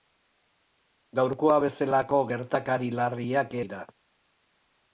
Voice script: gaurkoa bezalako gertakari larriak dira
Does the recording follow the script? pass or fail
pass